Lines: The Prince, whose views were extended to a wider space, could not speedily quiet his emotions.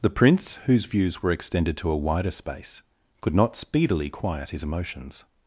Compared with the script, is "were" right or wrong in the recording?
right